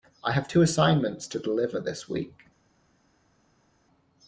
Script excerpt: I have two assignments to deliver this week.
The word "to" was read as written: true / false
true